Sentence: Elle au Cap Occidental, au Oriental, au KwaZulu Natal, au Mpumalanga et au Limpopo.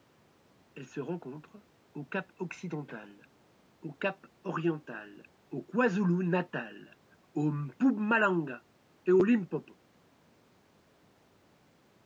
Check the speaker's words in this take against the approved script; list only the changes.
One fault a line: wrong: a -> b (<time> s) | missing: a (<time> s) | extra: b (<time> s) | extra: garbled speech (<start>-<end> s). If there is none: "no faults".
extra: se rencontre (0.9 s)
extra: Cap (3.9 s)